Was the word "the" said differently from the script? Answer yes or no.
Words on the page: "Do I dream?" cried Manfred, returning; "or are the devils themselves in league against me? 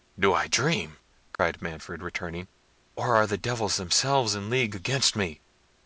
no